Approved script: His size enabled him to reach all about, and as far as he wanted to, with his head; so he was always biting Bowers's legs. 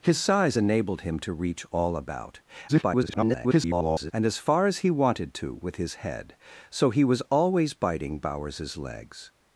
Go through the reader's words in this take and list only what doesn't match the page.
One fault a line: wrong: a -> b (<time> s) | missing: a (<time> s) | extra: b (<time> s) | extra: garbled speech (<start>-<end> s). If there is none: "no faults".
extra: garbled speech (2.7-4.1 s)